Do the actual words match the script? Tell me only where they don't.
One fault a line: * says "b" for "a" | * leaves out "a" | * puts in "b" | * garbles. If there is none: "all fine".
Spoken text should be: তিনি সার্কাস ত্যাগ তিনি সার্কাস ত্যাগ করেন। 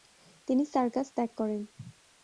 * leaves out "তিনি সার্কাস ত্যাগ"